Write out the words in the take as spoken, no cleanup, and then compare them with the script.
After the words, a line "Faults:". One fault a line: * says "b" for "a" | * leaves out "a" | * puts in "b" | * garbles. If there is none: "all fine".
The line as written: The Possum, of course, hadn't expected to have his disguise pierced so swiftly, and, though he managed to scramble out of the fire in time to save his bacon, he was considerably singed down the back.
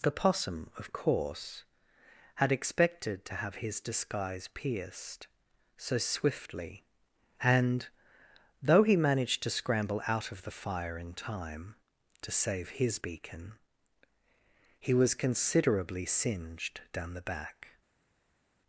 The Possum, of course, had expected to have his disguise pierced so swiftly, and, though he managed to scramble out of the fire in time to save his beacon, he was considerably singed down the back.
Faults:
* says "had" for "hadn't"
* says "beacon" for "bacon"